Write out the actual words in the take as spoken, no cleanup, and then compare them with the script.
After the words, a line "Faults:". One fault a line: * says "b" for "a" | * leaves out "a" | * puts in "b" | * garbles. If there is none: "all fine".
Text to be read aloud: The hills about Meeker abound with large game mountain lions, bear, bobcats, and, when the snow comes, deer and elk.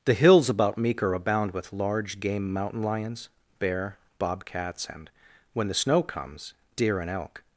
The hills about Meeker abound with large game mountain lions, bear, bobcats, and, when the snow comes, deer and elk.
Faults:
all fine